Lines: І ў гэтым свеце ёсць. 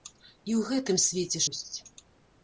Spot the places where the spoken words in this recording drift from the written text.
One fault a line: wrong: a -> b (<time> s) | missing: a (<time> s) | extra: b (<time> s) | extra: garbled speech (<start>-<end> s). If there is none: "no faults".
no faults